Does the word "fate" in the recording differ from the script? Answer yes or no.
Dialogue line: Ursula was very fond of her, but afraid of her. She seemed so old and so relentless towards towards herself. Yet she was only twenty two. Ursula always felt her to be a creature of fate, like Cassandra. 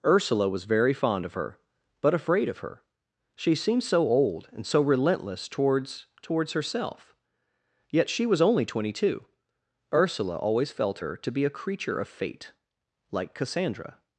no